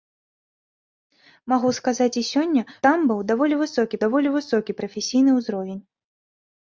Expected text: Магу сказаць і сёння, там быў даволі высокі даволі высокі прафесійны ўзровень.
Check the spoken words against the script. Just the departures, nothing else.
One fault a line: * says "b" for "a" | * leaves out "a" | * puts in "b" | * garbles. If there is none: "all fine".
all fine